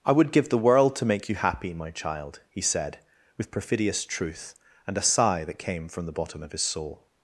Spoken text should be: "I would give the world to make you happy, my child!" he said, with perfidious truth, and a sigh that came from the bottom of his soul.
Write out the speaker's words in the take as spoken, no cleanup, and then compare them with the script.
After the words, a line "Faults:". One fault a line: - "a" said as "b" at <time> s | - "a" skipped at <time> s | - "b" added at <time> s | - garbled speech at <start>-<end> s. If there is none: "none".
"I would give the world to make you happy, my child!" he said, with perfidious truth, and a sigh that came from the bottom of his soul.
Faults:
none